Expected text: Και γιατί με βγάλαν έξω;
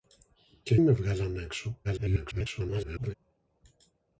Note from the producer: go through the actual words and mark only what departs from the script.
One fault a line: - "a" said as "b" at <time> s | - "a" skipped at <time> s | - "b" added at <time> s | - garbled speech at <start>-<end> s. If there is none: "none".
- "γιατί" skipped at 0.8 s
- garbled speech at 1.8-3.1 s